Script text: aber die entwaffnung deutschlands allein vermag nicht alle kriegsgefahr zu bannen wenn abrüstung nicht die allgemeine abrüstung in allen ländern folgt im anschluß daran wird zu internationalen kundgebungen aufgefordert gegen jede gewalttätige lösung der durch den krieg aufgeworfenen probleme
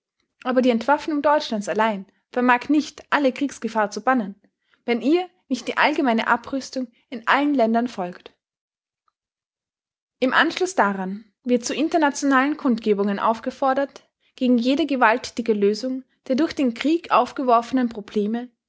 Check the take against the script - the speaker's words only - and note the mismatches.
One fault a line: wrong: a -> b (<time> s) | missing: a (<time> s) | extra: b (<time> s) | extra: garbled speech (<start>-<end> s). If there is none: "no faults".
wrong: abrüstung -> ihr (5.0 s)